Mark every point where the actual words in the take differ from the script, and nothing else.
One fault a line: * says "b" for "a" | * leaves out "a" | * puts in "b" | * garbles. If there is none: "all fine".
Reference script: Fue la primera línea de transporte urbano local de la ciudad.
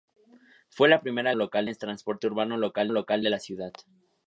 * says "local" for "línea"
* puts in "local"